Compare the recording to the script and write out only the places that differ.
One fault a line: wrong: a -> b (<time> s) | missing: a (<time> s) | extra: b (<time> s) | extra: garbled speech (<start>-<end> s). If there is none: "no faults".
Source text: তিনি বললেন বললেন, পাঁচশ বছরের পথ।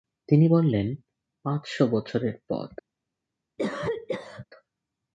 missing: বললেন (0.9 s)